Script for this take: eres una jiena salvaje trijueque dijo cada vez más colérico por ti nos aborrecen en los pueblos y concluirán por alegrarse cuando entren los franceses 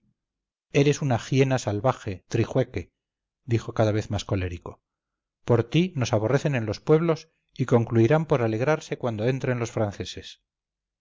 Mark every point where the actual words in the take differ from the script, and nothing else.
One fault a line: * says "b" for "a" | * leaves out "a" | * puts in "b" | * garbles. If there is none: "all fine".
all fine